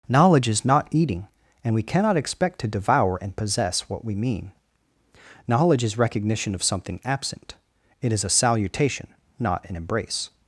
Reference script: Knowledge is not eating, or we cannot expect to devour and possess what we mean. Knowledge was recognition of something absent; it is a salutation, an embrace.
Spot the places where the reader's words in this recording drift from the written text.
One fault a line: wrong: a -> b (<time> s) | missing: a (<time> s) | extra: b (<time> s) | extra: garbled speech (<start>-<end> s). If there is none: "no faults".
wrong: or -> and (1.6 s)
wrong: was -> is (5.8 s)
extra: not (9.4 s)